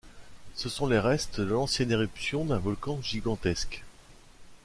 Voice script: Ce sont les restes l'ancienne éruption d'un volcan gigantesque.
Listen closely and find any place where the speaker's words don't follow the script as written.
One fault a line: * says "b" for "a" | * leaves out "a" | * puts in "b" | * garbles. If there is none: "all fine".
* puts in "de"